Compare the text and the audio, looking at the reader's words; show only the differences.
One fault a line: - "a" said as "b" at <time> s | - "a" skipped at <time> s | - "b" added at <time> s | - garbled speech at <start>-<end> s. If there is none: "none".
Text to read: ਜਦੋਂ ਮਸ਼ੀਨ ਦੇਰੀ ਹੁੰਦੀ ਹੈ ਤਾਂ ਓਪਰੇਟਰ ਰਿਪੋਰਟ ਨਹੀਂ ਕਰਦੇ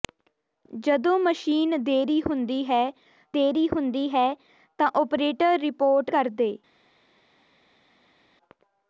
- "ਦੇਰੀ ਹੁੰਦੀ ਹੈ" added at 3.3 s
- "ਨਹੀਂ" skipped at 6.1 s